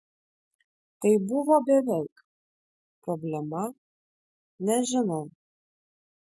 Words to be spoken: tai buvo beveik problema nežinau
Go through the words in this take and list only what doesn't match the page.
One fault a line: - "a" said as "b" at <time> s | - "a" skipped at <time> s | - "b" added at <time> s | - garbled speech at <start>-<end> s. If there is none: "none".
none